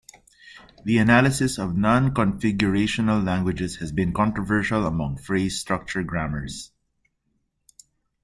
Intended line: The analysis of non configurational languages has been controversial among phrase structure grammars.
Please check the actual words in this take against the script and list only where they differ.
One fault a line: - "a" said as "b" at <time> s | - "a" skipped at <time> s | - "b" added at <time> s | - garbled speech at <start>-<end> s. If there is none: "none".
none